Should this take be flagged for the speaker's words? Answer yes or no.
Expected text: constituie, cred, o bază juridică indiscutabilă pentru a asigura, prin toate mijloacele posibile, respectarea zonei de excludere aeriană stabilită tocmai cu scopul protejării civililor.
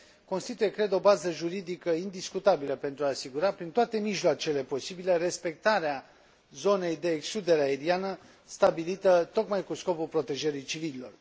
no